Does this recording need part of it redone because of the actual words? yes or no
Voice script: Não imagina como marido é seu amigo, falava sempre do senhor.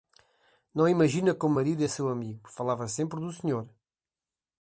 no